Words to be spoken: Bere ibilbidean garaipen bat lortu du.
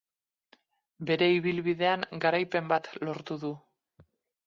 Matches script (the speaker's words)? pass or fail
pass